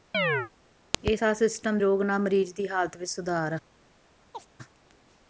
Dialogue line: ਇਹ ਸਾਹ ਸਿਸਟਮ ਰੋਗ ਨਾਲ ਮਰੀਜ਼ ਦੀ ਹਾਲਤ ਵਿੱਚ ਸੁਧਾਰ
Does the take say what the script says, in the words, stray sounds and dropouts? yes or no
no